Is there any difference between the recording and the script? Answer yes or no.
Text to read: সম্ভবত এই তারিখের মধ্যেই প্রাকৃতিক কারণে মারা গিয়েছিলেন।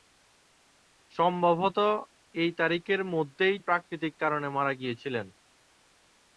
no